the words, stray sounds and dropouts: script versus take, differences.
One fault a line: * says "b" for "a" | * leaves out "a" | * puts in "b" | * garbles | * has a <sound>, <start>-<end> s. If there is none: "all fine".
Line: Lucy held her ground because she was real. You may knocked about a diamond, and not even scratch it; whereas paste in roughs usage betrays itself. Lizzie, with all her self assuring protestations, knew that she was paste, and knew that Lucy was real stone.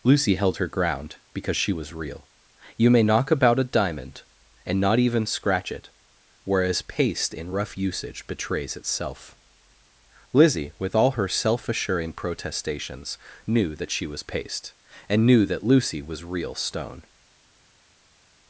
* says "knock" for "knocked"
* says "rough" for "roughs"